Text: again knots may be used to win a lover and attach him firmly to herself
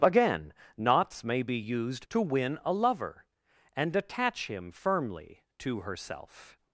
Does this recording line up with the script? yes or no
yes